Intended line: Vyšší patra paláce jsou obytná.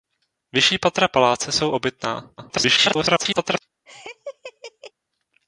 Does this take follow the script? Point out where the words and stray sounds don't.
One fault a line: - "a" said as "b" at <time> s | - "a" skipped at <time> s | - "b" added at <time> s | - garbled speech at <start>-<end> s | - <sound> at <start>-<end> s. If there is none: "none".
- garbled speech at 2.4-3.6 s
- laugh at 3.9-4.9 s